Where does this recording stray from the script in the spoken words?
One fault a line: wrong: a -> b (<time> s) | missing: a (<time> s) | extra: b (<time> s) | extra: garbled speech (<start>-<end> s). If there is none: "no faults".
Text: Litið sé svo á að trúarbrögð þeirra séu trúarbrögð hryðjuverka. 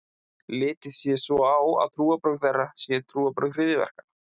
no faults